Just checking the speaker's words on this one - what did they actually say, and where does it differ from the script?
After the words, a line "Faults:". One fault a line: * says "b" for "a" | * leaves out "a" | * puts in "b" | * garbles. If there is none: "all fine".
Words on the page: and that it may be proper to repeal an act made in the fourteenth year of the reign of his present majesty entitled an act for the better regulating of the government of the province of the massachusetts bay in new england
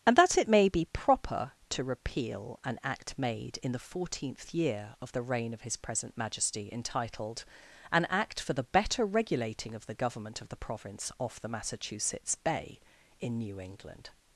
and that it may be proper to repeal an act made in the fourteenth year of the reign of his present majesty entitled an act for the better regulating of the government of the province off the massachusetts bay in new england
Faults:
* says "off" for "of"